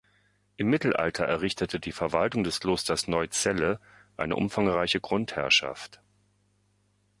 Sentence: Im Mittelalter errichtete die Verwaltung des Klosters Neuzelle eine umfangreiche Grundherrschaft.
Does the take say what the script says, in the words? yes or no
yes